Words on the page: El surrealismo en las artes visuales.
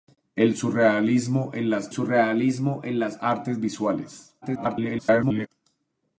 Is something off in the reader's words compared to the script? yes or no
yes